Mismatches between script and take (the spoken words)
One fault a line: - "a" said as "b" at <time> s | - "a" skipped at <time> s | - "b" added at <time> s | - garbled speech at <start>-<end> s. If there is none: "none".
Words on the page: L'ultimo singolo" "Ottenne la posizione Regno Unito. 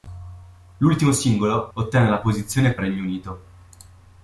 none